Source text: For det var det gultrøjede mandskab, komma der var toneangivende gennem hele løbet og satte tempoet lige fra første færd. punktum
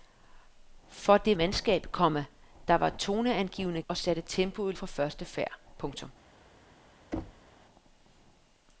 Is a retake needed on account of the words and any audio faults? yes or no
yes